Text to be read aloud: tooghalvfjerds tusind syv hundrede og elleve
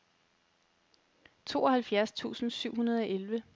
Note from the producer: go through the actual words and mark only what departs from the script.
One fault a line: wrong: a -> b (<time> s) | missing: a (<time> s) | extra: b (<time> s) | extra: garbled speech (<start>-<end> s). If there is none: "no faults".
no faults